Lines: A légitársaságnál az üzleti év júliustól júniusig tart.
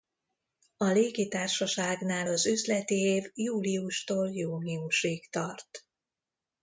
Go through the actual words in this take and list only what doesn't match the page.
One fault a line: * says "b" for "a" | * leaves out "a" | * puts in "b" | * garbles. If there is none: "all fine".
all fine